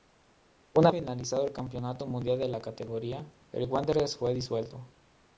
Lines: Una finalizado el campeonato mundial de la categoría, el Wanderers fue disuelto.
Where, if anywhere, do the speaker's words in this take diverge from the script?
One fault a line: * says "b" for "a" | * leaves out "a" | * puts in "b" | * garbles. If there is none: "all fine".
all fine